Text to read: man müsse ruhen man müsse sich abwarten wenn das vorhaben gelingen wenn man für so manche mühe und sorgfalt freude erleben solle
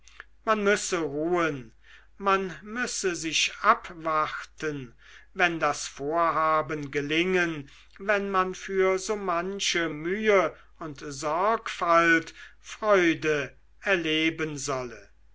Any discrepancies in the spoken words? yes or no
no